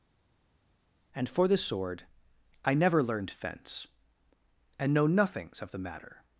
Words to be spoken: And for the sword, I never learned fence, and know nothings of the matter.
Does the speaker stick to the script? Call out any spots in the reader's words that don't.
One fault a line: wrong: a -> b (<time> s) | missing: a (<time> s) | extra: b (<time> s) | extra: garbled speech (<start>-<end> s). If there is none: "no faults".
no faults